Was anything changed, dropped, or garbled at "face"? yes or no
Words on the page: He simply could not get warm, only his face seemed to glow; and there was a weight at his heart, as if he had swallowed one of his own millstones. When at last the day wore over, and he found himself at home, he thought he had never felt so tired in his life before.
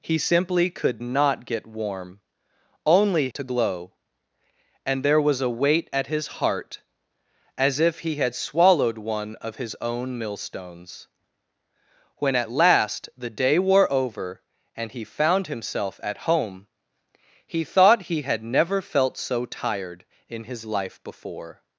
yes